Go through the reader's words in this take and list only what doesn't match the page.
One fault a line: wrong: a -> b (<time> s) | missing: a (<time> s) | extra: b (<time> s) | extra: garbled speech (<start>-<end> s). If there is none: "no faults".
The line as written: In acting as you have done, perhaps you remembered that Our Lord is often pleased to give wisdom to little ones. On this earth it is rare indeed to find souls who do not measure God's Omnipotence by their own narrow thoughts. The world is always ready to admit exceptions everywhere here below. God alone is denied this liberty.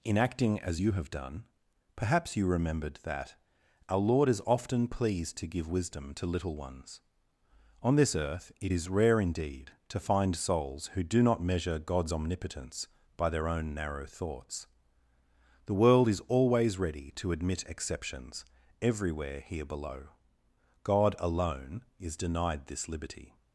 no faults